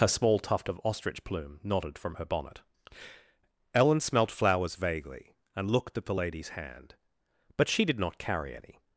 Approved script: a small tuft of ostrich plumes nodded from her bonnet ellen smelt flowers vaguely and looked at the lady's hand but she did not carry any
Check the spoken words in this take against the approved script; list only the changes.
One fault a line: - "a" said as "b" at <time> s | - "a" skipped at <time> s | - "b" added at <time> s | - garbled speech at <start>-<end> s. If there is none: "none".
- "plumes" said as "plume" at 1.2 s